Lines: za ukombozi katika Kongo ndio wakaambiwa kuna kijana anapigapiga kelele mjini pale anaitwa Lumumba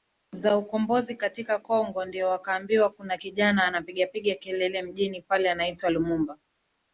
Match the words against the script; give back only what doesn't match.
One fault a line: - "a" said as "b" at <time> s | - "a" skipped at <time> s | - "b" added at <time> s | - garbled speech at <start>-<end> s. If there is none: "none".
none